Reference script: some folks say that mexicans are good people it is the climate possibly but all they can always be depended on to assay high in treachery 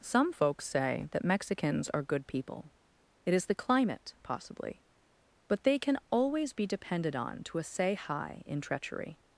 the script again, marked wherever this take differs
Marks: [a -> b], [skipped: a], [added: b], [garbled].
some folks say that mexicans are good people it is the climate possibly but [skipped: all] they can always be depended on to assay high in treachery